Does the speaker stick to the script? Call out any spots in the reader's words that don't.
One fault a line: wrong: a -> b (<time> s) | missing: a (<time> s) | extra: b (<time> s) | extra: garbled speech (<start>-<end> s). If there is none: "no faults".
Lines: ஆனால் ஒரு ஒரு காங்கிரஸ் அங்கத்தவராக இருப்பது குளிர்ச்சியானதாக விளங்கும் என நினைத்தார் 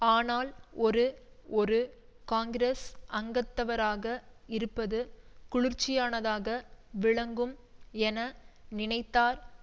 no faults